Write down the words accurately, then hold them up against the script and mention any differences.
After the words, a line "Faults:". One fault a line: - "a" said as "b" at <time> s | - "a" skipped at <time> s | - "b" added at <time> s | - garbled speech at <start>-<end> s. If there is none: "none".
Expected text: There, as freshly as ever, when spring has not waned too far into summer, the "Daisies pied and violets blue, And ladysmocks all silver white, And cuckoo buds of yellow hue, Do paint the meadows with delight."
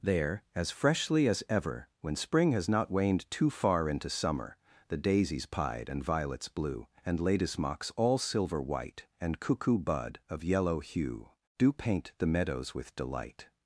There, as freshly as ever, when spring has not waned too far into summer, the "Daisies pied and violets blue, And ladysmocks all silver white, And cuckoo bud of yellow hue, Do paint the meadows with delight."
Faults:
- "buds" said as "bud" at 9.8 s